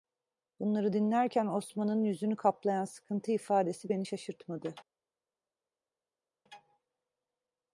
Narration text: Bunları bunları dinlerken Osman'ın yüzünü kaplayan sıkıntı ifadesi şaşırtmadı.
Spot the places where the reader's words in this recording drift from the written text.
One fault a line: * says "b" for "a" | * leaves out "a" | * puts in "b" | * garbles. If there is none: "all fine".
* leaves out "bunları"
* puts in "beni"